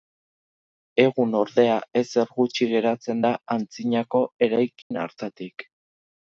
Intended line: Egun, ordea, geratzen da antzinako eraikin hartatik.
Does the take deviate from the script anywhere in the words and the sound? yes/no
yes